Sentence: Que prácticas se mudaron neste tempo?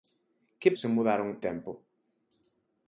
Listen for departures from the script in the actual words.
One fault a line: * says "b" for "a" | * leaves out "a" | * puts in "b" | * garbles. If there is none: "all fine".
* leaves out "prácticas"
* leaves out "neste"